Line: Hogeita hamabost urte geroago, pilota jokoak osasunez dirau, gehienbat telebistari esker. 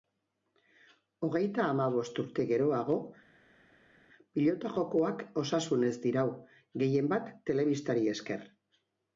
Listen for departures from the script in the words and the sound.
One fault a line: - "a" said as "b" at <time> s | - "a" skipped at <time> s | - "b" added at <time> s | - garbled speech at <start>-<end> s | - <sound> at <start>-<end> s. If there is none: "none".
none